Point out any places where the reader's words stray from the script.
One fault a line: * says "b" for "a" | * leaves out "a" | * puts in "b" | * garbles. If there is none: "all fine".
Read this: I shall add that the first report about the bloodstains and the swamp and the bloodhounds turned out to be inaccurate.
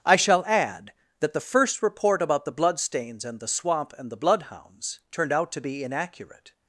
all fine